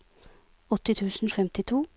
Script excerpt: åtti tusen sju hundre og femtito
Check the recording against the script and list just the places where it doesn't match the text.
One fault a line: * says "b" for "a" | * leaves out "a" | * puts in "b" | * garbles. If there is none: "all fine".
* leaves out "sju hundre"